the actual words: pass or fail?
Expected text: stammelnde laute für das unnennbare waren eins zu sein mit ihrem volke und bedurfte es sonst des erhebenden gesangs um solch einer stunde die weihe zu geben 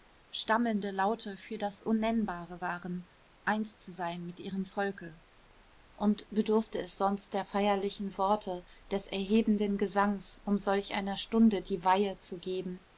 fail